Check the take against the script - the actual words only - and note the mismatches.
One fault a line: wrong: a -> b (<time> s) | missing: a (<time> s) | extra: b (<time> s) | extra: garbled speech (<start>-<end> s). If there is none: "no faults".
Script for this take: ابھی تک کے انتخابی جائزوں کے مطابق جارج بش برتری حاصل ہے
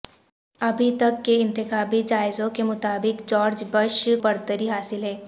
no faults